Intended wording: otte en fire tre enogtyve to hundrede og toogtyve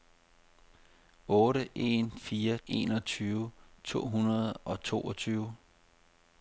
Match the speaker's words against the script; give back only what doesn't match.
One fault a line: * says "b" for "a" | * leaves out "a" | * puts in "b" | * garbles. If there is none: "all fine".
* leaves out "tre"